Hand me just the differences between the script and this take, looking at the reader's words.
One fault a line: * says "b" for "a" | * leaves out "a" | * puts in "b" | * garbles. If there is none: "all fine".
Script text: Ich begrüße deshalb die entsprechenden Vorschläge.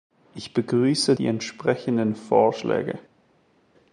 * leaves out "deshalb"